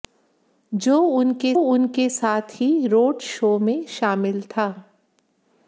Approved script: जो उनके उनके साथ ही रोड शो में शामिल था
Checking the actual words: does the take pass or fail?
pass